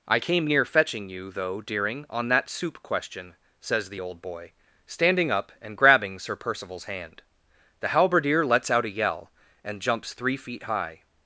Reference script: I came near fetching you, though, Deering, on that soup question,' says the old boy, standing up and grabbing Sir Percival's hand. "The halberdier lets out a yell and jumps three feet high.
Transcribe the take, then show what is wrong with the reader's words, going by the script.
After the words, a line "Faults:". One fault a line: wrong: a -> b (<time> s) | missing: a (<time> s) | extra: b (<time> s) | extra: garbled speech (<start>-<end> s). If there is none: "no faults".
I came near fetching you, though, Deering, on that soup question,' says the old boy, standing up and grabbing Sir Percival's hand. "The halberdier lets out a yell and jumps three feet high.
Faults:
no faults